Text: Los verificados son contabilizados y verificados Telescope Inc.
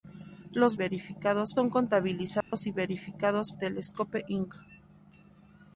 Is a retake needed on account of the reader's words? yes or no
no